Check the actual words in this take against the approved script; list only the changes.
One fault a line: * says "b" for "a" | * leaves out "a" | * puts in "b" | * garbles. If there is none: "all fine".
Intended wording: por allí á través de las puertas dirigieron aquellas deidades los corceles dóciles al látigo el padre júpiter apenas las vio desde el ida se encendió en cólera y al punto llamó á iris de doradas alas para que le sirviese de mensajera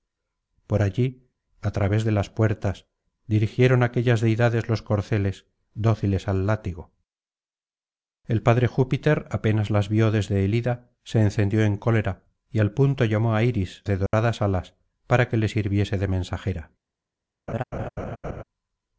all fine